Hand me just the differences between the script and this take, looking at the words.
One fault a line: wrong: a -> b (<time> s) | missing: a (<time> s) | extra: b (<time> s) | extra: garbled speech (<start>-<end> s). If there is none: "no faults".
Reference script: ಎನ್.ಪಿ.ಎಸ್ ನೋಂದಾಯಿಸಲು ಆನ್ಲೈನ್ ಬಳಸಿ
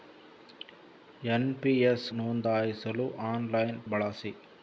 no faults